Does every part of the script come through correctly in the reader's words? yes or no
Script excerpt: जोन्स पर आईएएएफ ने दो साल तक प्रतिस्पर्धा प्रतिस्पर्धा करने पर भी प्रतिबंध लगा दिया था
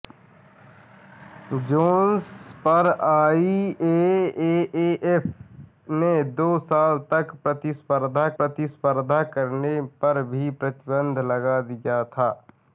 yes